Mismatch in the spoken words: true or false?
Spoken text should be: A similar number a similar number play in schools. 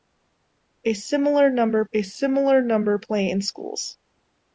false